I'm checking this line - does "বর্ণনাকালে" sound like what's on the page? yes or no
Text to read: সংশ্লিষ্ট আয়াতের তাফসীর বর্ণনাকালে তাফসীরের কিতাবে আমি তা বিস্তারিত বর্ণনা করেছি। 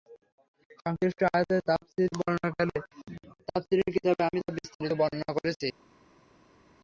yes